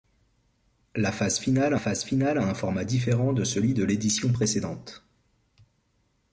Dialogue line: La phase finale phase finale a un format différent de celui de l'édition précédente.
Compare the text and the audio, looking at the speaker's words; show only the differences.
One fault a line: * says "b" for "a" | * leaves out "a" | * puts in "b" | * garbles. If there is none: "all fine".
all fine